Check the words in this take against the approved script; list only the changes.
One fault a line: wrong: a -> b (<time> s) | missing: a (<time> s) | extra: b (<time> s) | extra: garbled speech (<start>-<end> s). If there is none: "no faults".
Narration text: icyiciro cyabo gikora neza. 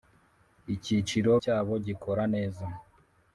no faults